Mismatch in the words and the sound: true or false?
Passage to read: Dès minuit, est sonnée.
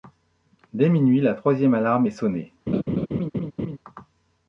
true